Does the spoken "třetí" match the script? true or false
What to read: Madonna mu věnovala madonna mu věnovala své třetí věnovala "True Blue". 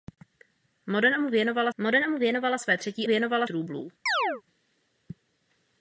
true